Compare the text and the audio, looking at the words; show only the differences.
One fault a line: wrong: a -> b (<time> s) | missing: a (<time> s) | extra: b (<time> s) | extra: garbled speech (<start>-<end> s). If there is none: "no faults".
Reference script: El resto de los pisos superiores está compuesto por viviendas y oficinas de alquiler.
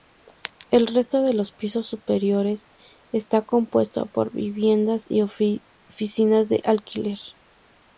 no faults